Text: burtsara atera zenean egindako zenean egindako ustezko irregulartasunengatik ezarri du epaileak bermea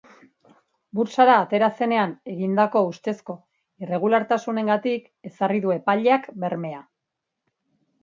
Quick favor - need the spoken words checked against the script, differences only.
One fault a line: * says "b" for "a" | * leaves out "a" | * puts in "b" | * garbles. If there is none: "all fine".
* leaves out "zenean egindako"